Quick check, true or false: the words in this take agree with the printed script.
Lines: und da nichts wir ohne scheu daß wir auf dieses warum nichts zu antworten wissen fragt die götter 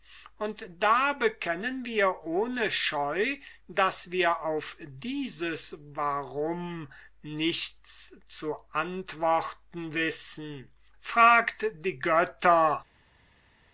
false